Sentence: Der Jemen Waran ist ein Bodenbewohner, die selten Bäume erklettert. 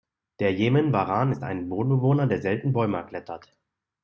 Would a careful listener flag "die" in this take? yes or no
yes